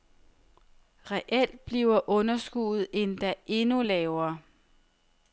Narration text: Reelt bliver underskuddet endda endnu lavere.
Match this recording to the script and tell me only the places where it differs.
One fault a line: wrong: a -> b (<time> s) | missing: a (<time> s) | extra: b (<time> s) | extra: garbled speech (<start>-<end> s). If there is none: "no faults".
no faults